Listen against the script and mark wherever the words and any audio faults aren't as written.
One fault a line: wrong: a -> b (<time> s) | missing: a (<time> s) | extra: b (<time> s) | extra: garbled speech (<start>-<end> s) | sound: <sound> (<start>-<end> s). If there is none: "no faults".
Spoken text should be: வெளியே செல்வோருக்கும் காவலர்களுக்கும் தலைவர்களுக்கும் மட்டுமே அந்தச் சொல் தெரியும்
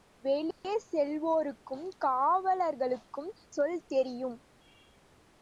sound: dropout (0.5-0.6 s)
missing: தலைவர்களுக்கும் மட்டுமே அந்தச் (3.3 s)